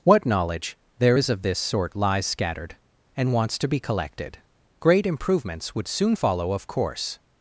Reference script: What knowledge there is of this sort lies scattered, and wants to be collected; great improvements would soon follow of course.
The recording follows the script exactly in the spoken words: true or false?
true